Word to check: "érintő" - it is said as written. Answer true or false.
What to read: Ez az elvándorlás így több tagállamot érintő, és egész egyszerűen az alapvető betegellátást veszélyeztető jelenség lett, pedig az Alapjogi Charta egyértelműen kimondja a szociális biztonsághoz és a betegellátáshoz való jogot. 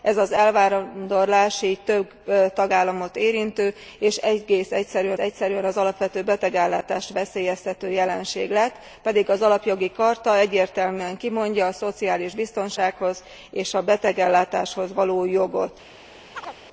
true